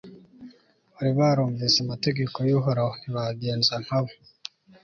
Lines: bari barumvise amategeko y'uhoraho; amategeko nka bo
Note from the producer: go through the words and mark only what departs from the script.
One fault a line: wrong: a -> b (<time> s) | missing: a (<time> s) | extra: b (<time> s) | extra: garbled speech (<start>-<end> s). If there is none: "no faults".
wrong: amategeko -> ntibagenza (3.0 s)